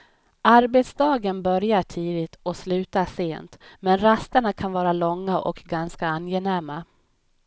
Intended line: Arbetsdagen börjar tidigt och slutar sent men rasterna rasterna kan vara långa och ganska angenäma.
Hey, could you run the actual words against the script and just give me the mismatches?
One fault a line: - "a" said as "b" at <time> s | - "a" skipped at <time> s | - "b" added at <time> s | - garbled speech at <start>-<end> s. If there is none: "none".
- "rasterna" skipped at 4.5 s